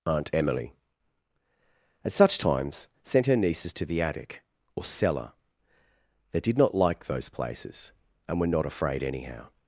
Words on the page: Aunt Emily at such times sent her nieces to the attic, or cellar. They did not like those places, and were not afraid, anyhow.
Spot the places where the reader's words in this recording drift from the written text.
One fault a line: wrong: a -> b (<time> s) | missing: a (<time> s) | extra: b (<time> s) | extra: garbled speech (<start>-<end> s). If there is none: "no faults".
no faults